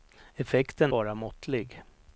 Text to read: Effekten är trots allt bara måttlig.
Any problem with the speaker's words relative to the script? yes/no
yes